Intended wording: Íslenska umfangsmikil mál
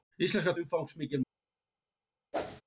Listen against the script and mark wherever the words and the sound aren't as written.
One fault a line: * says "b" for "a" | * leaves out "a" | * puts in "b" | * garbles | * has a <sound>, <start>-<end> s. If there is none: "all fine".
* has a whoosh, 2.3-2.6 s